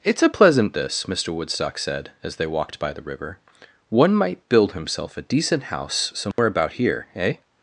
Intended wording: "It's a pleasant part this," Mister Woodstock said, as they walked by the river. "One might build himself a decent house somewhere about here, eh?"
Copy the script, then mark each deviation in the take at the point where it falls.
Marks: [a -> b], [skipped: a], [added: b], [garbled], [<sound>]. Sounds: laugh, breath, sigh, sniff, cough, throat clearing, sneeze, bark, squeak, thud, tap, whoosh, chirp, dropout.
"It's a pleasant [skipped: part] this," Mister Woodstock said, as they walked by the river. "One might build himself a decent house somewhere [dropout] about here, eh?"